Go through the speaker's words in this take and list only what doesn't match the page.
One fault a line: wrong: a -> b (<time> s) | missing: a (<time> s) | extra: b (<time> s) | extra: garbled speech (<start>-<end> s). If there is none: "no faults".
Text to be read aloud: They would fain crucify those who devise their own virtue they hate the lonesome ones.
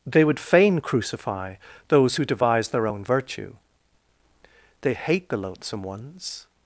wrong: lonesome -> loathsome (5.4 s)